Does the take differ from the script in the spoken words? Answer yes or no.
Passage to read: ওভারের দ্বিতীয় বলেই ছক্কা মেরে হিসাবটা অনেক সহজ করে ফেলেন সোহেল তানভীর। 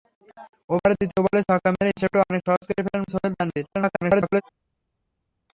yes